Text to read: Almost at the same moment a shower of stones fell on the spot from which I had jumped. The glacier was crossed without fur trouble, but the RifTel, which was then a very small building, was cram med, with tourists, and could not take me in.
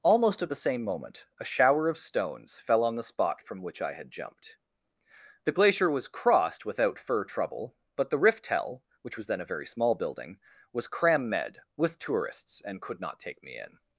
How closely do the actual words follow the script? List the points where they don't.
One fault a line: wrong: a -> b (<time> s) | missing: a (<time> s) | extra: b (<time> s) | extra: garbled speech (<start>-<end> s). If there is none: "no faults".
no faults